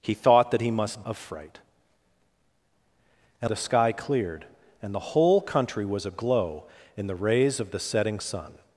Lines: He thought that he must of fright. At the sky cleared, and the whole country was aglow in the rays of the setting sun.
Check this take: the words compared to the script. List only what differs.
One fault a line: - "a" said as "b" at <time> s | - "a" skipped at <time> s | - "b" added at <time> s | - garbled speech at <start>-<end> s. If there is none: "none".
none